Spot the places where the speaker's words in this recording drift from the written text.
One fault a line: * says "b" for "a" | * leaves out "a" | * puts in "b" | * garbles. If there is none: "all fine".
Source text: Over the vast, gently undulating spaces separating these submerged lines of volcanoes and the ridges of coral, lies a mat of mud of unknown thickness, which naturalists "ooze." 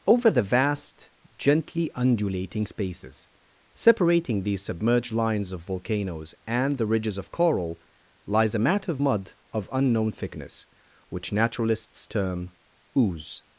* puts in "term"